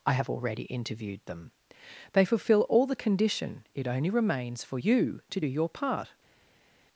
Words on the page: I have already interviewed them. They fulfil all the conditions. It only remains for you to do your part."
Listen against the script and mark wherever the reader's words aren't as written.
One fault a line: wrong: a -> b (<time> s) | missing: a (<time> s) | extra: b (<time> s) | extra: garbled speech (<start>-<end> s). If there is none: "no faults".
wrong: conditions -> condition (3.0 s)